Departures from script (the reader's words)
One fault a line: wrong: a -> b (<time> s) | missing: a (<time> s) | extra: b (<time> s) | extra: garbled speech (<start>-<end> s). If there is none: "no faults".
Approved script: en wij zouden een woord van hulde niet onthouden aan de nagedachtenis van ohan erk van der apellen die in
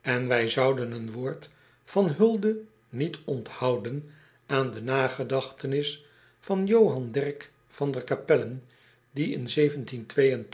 no faults